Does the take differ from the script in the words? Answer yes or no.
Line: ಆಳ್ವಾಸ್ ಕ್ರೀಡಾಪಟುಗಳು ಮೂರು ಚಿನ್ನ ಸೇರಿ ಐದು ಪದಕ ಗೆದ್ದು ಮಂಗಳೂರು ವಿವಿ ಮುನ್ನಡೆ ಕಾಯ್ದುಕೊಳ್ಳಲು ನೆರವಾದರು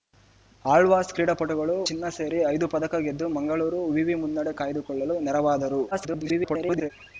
yes